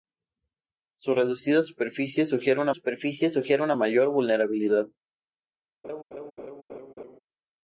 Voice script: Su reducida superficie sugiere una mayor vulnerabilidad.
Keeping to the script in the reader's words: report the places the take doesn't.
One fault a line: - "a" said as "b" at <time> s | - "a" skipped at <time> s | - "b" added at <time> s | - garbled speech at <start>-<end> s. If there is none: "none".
- "superficie sugiere una" added at 2.7 s